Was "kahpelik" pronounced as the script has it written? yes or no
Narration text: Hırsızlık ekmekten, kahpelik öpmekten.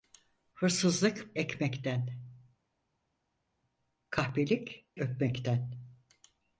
yes